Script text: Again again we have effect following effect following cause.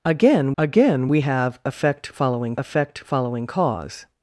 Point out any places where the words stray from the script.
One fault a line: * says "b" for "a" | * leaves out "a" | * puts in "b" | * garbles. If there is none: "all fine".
all fine